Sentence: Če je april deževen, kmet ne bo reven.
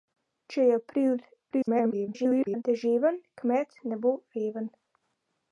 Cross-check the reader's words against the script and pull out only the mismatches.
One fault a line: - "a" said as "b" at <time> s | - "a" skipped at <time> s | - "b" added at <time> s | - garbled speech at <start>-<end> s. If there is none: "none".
- garbled speech at 1.5-2.6 s